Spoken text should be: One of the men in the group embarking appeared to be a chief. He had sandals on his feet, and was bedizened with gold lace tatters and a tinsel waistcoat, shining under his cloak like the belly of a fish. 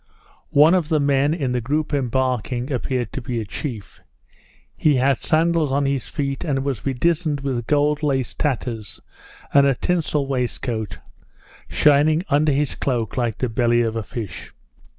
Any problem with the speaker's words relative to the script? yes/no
no